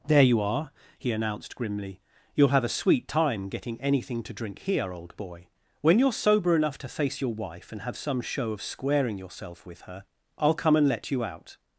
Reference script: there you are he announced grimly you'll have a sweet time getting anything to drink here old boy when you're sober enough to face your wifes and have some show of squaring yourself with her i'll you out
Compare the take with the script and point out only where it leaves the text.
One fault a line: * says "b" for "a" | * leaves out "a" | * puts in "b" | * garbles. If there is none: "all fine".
* says "wife" for "wifes"
* puts in "come and let"